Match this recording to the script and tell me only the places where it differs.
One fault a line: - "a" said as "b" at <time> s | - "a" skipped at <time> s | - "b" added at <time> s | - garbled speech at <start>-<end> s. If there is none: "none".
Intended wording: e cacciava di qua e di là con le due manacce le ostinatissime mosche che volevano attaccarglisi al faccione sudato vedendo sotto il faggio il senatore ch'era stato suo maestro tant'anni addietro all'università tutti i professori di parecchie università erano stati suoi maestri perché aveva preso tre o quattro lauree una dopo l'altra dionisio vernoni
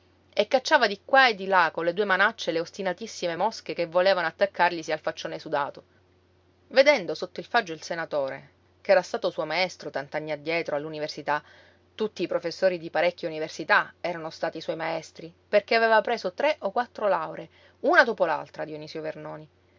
none